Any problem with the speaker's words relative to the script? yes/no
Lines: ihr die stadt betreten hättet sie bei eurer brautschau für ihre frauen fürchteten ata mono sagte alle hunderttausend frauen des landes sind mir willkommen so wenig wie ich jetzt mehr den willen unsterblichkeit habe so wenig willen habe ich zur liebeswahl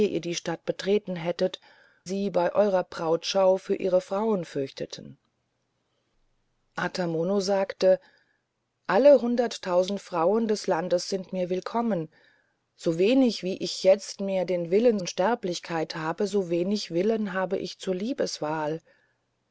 no